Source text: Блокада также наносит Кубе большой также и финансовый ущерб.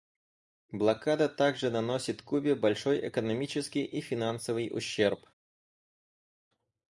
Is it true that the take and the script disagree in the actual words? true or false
true